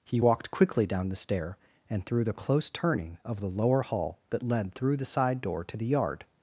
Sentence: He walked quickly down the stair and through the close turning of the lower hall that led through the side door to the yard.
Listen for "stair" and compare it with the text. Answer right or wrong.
right